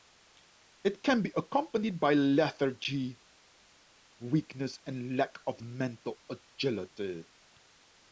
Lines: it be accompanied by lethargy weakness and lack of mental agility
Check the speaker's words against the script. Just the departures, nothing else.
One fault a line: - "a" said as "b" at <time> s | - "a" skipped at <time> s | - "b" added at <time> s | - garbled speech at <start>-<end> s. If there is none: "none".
- "can" added at 1.0 s